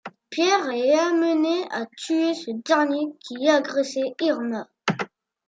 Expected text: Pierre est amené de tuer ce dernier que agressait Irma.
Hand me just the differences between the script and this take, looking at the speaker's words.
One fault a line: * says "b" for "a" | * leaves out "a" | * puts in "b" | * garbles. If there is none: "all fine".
* says "à" for "de"
* says "qui" for "que"